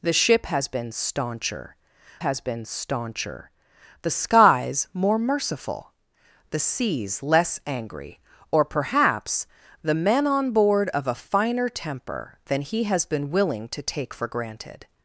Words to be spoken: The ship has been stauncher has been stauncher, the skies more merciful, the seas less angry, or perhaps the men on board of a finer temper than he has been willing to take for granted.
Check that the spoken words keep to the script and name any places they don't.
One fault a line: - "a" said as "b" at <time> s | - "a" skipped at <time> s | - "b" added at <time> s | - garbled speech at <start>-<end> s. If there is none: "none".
none